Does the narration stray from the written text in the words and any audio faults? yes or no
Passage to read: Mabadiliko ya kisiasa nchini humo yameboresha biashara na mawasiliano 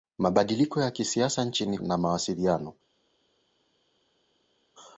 yes